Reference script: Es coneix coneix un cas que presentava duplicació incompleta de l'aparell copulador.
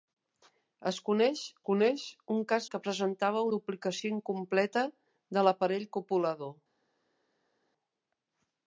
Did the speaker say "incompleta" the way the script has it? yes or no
yes